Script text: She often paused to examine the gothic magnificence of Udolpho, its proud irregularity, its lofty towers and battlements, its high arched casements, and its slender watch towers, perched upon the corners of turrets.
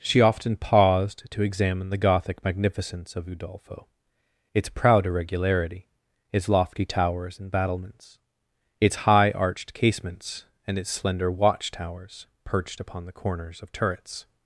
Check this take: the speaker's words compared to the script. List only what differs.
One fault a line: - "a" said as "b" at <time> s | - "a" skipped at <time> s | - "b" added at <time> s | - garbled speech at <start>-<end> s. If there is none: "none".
none